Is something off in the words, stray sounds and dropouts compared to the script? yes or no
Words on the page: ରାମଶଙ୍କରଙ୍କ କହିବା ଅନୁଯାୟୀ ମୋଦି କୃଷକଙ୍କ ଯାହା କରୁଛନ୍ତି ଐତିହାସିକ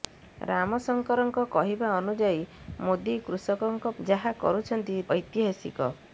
no